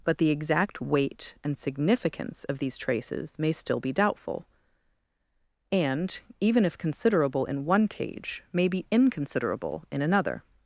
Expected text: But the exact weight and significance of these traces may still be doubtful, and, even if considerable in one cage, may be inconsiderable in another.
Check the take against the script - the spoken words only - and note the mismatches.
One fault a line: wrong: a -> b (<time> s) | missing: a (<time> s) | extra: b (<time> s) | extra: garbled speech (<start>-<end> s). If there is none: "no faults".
no faults